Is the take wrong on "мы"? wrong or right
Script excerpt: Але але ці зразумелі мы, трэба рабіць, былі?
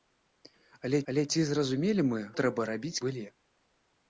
right